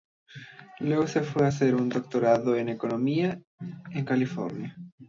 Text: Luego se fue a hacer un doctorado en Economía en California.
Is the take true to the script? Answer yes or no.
yes